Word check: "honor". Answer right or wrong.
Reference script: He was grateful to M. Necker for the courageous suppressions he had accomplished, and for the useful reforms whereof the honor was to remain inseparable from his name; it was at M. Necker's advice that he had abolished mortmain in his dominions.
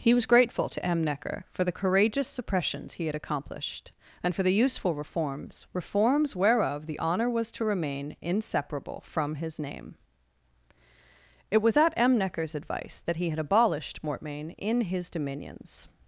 right